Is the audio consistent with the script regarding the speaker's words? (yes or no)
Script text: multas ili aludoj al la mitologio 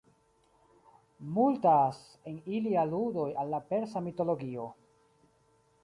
no